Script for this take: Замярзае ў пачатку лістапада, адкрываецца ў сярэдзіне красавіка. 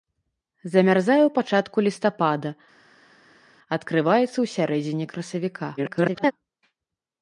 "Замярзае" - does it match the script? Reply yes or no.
yes